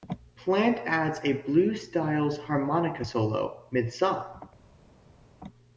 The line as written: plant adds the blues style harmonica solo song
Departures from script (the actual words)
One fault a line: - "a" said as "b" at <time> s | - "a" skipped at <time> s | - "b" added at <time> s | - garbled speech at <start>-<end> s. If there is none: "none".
- "the" said as "a" at 1.2 s
- "mid" added at 3.7 s